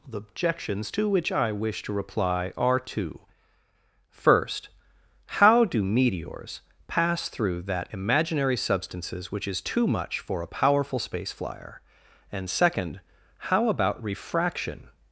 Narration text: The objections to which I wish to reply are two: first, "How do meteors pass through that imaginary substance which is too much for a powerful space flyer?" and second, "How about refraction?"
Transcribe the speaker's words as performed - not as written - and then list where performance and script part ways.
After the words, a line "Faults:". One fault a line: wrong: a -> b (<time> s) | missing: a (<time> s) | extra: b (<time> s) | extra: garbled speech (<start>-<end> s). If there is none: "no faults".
The objections to which I wish to reply are two: first, "How do meteors pass through that imaginary substances which is too much for a powerful space flyer?" and second, "How about refraction?"
Faults:
wrong: substance -> substances (8.6 s)